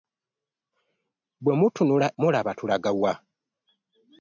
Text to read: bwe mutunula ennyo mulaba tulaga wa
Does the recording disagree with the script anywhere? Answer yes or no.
yes